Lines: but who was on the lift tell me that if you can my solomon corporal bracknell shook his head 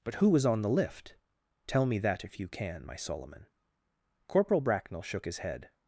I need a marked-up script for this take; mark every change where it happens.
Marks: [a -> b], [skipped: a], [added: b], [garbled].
but who was on the lift tell me that if you can my solomon corporal bracknell shook his head